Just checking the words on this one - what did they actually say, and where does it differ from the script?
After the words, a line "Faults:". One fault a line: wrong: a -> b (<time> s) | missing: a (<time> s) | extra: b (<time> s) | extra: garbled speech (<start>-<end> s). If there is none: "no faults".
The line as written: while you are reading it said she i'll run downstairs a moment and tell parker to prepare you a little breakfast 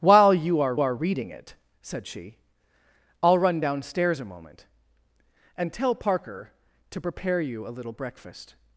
while you are are reading it said she i'll run downstairs a moment and tell parker to prepare you a little breakfast
Faults:
extra: are (0.8 s)